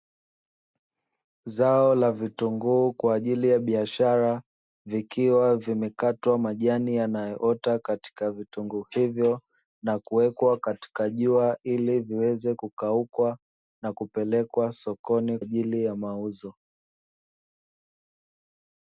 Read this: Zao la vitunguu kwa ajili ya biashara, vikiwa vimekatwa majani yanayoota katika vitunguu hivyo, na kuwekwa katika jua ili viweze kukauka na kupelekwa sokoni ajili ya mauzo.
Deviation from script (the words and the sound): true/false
false